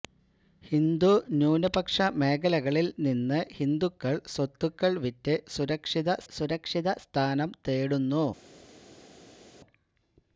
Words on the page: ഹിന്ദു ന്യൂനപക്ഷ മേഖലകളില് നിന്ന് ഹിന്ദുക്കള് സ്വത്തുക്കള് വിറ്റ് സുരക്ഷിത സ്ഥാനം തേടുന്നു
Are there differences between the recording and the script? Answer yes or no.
yes